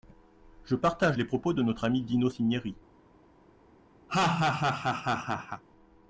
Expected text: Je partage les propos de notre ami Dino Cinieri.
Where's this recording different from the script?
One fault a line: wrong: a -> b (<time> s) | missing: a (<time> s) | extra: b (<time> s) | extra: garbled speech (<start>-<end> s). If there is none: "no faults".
no faults